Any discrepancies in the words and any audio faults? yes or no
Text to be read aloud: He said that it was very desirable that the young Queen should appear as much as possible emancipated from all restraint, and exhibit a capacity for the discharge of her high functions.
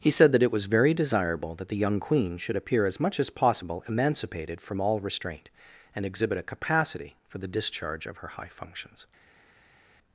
no